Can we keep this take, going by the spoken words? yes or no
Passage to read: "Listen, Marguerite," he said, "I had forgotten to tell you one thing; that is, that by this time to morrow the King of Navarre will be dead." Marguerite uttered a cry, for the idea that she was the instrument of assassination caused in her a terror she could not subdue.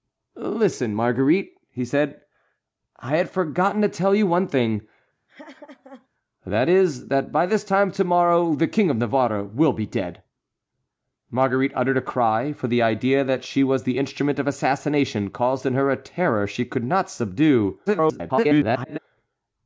no